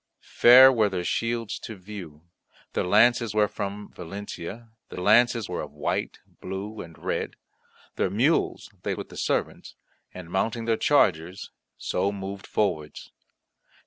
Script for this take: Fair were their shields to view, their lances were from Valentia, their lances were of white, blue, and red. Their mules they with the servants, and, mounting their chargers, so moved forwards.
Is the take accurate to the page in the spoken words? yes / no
yes